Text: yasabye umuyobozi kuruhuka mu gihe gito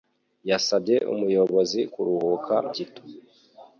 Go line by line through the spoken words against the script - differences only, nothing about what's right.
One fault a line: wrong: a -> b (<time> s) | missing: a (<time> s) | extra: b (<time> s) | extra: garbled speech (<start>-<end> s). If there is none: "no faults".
missing: mu gihe (2.6 s)